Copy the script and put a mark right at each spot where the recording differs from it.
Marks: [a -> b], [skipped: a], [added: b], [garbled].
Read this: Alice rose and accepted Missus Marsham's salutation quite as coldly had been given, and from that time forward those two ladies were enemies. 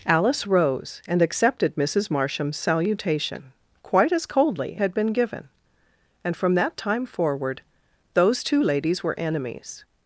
Alice rose and accepted Missus Marsham's salutation quite as coldly had been given, and from that time forward those two ladies were enemies.